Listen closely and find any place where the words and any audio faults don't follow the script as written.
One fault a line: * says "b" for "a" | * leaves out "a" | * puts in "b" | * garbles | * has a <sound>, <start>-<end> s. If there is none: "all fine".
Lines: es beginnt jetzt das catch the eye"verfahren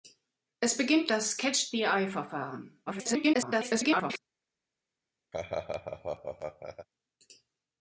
* leaves out "jetzt"
* garbles
* has a laugh, 5.3-6.9 s